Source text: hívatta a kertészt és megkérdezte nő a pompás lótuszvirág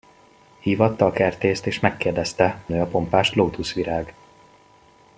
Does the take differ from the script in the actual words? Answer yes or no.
no